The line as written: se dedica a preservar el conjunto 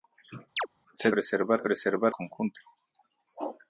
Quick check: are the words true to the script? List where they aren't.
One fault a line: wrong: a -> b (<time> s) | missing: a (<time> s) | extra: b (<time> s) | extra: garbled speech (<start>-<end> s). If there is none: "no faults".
wrong: dedica -> preservar (1.1 s)
missing: el (2.1 s)